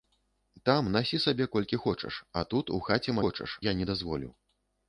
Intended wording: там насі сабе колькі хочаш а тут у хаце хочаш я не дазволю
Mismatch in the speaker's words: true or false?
false